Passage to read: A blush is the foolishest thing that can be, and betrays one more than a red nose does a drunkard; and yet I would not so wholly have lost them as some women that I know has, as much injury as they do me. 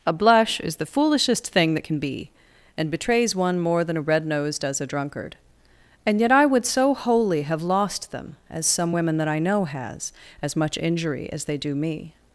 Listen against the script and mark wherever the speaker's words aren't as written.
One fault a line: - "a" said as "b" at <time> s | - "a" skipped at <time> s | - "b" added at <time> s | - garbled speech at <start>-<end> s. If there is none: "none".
- "not" skipped at 6.7 s